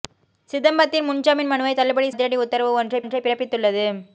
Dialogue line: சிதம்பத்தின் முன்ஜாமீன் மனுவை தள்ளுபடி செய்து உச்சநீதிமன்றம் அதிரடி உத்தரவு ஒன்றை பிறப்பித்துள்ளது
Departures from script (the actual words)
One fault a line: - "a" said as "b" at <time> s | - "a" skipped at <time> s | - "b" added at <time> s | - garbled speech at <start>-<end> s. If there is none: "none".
- "செய்து உச்சநீதிமன்றம்" skipped at 2.1 s
- "ஒன்றை" added at 3.0 s